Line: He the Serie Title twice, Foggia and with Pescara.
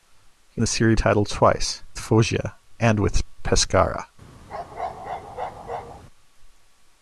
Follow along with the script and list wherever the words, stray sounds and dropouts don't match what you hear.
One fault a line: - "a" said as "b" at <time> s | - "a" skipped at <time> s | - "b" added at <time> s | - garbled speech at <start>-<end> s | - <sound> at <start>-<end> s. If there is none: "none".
- bark at 4.5-6.0 s